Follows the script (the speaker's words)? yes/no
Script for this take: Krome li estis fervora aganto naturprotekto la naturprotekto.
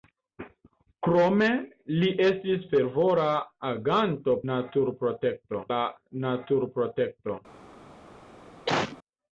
yes